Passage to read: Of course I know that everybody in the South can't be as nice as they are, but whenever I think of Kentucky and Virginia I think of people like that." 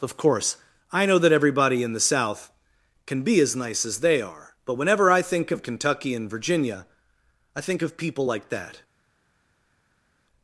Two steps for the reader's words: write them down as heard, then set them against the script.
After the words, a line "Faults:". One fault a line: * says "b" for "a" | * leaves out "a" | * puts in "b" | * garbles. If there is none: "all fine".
Of course I know that everybody in the South can be as nice as they are, but whenever I think of Kentucky and Virginia I think of people like that."
Faults:
* says "can" for "can't"